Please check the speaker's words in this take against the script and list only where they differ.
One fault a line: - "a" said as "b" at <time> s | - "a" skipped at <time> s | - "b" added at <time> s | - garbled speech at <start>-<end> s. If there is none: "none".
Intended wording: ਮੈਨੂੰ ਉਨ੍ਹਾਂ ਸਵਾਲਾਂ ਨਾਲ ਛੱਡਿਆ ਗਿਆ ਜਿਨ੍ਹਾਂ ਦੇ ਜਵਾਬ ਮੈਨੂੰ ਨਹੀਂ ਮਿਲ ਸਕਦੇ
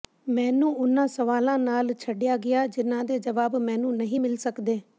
none